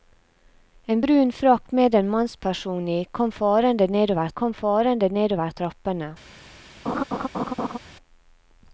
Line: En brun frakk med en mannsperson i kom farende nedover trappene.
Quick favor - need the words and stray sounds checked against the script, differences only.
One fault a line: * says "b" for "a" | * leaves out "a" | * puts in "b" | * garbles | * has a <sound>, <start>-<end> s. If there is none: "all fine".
* puts in "kom farende nedover"
* has a laugh, 6.9-7.8 s